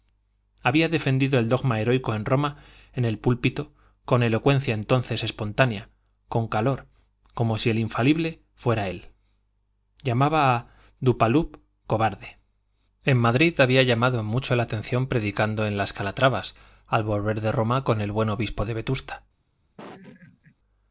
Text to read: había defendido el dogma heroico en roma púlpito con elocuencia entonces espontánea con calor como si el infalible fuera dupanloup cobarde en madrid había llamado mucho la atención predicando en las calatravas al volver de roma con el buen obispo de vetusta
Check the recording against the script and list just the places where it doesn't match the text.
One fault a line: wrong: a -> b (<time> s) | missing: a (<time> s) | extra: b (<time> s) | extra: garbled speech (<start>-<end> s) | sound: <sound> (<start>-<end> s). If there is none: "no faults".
extra: en el (2.9 s)
extra: él llamaba a (8.9 s)
sound: laugh (19.8-20.6 s)